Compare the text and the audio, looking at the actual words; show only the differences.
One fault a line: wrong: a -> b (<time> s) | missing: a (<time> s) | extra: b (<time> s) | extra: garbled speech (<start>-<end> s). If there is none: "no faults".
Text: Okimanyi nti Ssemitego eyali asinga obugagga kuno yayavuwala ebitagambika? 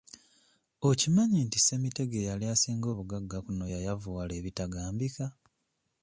no faults